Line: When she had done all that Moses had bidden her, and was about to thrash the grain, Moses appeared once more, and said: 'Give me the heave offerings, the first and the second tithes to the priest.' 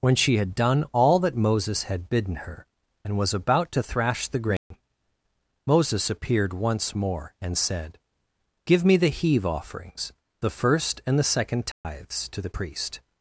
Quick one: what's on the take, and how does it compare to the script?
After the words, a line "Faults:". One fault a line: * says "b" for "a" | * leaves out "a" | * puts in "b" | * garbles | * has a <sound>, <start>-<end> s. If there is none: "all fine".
When she had done all that Moses had bidden her, and was about to thrash the grain, Moses appeared once more, and said: 'Give me the heave offerings, the first and the second tithes to the priest.'
Faults:
* has a dropout, 4.6-4.7 s
* has a dropout, 11.7-11.8 s